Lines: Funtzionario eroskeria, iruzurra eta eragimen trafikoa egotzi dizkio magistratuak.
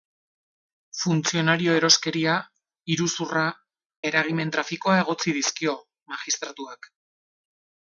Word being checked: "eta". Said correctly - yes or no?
no